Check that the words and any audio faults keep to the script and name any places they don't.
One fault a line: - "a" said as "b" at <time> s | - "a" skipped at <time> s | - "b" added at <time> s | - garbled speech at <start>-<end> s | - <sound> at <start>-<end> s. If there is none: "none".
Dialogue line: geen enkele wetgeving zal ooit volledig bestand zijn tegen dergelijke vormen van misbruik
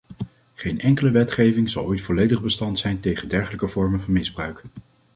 none